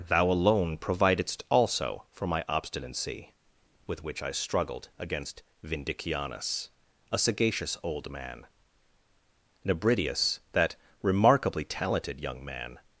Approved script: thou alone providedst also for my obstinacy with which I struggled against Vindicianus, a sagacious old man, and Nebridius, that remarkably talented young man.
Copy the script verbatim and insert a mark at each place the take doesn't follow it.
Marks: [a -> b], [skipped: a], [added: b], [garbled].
thou alone providedst also for my obstinacy with which I struggled against Vindicianus, a sagacious old man, [skipped: and] Nebridius, that remarkably talented young man.